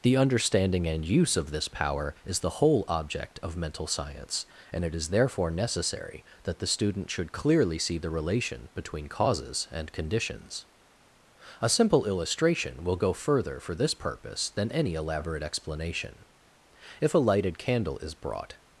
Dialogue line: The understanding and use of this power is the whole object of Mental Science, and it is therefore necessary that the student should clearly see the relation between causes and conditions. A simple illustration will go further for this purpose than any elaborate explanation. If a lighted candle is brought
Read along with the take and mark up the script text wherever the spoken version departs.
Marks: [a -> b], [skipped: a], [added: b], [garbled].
The understanding and use of this power is the whole object of Mental Science, and it is therefore necessary that the student should clearly see the relation between causes and conditions. A simple illustration will go further for this purpose than any elaborate explanation. If a lighted candle is brought